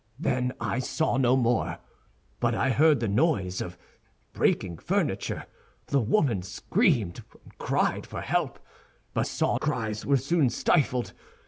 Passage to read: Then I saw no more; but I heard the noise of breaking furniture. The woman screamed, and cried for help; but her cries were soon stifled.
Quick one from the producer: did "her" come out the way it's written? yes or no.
no